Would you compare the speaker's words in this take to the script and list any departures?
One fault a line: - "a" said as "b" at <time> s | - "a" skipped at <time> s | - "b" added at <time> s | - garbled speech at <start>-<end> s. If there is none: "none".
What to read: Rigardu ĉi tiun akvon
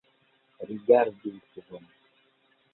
- "ĉi tiun" skipped at 1.4 s